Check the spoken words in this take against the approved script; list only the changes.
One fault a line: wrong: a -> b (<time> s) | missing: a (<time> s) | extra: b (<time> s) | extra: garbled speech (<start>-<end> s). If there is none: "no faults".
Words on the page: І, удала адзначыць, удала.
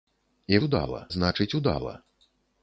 no faults